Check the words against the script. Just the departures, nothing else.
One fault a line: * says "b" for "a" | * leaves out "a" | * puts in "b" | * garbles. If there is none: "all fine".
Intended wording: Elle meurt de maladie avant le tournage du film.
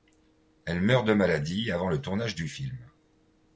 all fine